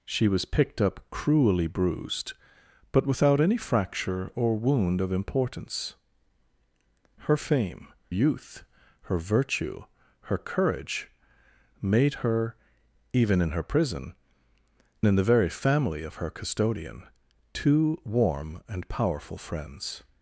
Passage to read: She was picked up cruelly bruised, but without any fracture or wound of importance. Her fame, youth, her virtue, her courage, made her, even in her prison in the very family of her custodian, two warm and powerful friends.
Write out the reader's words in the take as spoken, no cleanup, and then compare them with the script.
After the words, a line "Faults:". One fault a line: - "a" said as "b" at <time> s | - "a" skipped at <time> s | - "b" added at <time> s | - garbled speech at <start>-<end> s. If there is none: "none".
She was picked up cruelly bruised, but without any fracture or wound of importance. Her fame, youth, her virtue, her courage, made her, even in her prison in the very family of her custodian, two warm and powerful friends.
Faults:
none